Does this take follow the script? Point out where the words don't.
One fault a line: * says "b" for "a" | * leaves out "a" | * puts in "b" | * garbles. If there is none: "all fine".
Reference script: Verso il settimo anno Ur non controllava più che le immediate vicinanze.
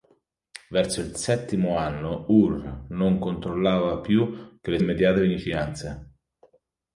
all fine